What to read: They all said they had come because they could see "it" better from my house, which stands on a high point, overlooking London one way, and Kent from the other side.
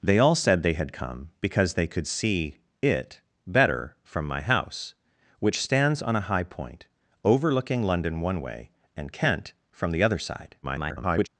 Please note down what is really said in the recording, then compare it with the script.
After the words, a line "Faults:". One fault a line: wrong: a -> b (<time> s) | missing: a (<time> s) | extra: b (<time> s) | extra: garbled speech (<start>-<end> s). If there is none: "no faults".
They all said they had come because they could see "it" better from my house, which stands on a high point, overlooking London one way, and Kent from the other side. [garbled]
Faults:
extra: garbled speech (10.6-11.3 s)